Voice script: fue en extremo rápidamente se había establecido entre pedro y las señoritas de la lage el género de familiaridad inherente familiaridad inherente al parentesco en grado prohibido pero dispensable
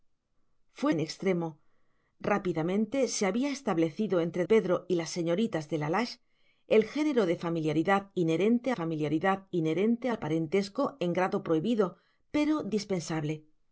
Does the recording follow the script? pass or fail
pass